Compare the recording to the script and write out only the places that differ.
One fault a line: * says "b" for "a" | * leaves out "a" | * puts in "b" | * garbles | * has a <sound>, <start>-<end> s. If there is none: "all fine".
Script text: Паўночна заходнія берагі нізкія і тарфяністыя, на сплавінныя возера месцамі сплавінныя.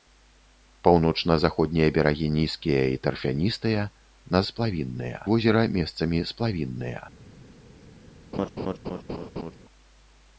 * has a laugh, 8.3-9.6 s